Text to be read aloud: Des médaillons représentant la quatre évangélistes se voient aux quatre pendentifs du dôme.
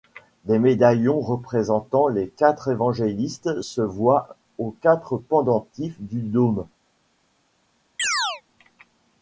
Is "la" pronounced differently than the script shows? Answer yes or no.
yes